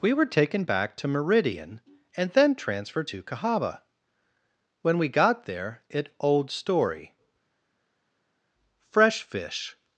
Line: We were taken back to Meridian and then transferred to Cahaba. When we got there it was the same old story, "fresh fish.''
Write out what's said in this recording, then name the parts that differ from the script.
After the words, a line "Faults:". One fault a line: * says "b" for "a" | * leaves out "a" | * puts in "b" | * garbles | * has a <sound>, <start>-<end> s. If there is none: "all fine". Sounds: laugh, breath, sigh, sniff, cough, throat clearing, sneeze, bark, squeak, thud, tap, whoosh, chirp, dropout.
We were taken back to Meridian and then transferred to Cahaba. When we got there it old story, "fresh fish.''
Faults:
* leaves out "was the same"